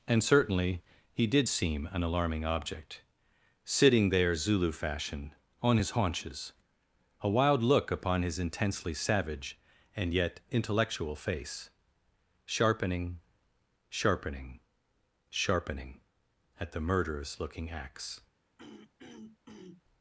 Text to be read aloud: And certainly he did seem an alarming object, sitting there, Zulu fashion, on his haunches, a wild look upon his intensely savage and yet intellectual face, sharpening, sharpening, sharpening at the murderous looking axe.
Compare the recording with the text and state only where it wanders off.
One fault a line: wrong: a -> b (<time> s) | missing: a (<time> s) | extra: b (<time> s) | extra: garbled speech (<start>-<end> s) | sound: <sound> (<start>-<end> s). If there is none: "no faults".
sound: throat clearing (18.6-19.8 s)